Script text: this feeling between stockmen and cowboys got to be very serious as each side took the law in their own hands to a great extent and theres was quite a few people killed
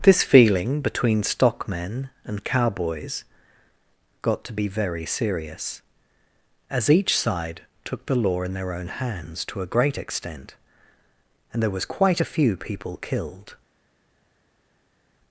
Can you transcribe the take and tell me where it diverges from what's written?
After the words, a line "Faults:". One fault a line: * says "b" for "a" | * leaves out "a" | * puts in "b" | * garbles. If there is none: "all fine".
this feeling between stockmen and cowboys got to be very serious as each side took the law in their own hands to a great extent and there was quite a few people killed
Faults:
* says "there" for "theres"